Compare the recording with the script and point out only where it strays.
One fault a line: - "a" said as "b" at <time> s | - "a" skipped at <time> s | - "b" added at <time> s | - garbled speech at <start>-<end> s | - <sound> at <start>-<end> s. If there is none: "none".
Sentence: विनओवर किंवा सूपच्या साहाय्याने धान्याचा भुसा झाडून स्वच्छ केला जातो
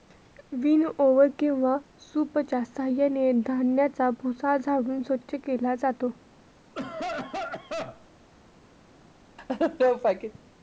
- cough at 6.7-8.1 s
- laugh at 9.4-10.4 s